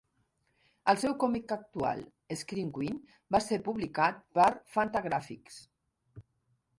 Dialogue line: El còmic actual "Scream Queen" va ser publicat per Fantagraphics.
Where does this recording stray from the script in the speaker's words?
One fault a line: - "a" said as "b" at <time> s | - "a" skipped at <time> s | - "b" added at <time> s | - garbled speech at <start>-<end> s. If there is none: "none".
- "seu" added at 1.0 s